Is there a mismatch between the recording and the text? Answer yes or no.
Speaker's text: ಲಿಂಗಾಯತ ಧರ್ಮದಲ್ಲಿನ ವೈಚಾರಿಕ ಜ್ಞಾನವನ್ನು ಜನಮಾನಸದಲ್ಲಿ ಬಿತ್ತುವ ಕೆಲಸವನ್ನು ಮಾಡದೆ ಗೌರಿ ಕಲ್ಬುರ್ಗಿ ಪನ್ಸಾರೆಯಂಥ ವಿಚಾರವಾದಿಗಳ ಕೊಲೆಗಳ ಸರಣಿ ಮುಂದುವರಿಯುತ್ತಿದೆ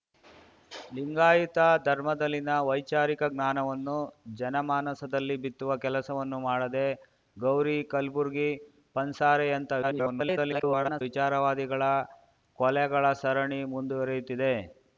yes